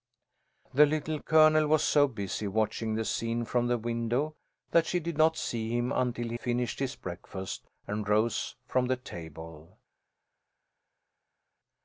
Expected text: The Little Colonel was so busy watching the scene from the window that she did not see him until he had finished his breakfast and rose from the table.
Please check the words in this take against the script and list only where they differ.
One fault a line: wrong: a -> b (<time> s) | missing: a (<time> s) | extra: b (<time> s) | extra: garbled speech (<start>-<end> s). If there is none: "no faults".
missing: had (6.4 s)